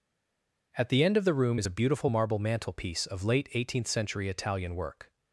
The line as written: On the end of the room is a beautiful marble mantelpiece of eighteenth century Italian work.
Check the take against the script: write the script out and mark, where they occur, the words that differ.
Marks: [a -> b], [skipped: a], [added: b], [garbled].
[On -> At] the end of the room is a beautiful marble mantelpiece of [added: late] eighteenth century Italian work.